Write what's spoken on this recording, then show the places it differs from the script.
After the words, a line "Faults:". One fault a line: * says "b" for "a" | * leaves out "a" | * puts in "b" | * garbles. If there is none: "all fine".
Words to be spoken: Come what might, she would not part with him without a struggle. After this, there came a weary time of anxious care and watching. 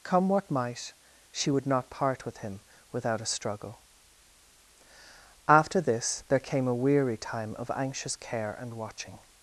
Come what might, she would not part with him without a struggle. After this, there came a weary time of anxious care and watching.
Faults:
all fine